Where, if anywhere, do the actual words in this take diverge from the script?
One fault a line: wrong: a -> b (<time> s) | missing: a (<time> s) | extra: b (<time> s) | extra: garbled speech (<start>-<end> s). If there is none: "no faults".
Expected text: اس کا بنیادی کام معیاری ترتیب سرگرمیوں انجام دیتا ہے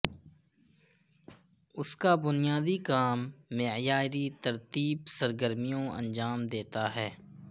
no faults